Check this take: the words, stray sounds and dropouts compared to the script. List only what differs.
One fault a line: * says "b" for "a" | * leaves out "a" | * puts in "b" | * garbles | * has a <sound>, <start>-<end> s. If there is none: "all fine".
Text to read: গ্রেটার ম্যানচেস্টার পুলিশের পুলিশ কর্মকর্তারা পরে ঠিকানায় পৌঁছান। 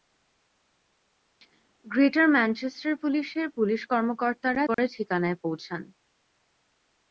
* has a dropout, 4.7-4.8 s